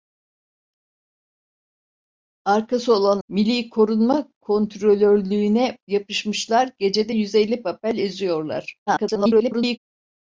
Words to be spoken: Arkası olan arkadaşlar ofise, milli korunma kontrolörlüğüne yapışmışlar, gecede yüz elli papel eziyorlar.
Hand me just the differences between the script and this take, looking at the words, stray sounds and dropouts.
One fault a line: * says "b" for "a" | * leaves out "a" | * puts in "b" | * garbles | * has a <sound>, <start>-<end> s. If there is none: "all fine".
* leaves out "arkadaşlar ofise"
* garbles